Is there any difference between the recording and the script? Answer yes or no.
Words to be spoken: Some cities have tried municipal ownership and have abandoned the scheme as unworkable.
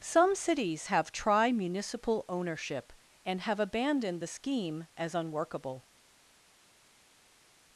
yes